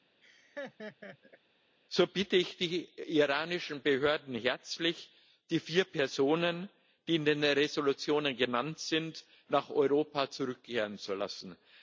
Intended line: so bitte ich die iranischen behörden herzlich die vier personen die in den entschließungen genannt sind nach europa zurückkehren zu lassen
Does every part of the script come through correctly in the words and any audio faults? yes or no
no